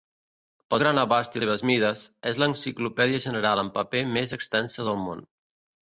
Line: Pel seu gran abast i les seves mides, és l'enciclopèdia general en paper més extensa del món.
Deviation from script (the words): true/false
true